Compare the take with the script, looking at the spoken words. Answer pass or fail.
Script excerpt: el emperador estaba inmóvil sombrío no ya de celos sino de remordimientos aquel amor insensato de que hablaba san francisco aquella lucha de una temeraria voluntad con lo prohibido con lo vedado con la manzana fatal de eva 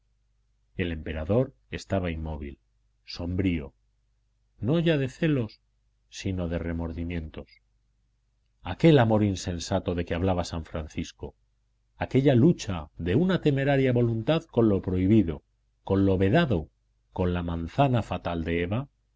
pass